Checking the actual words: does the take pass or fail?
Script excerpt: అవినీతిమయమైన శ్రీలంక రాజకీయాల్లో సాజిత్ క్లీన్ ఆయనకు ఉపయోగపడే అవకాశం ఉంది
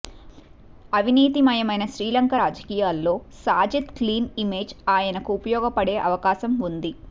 fail